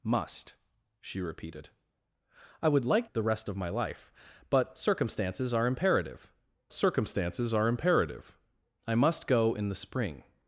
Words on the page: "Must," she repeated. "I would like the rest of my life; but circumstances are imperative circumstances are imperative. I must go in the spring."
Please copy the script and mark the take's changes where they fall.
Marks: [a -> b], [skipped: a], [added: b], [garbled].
"Must," she repeated. "I would like the rest of my life; but circumstances are imperative circumstances are imperative. I must go in the spring."